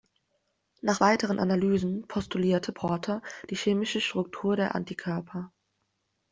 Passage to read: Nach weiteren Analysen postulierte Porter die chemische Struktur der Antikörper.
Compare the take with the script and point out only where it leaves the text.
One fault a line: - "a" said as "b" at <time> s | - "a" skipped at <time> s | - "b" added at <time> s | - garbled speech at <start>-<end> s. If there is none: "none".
none